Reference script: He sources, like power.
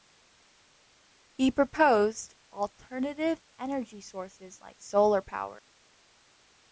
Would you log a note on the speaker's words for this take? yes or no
yes